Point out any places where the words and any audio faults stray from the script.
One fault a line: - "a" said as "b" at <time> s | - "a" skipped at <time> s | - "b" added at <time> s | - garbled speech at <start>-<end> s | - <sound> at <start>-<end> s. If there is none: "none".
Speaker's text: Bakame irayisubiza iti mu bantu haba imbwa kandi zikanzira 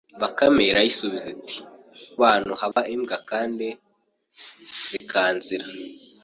- "mu" skipped at 1.6 s
- dropout at 2.7-2.8 s
- dropout at 5.0-5.0 s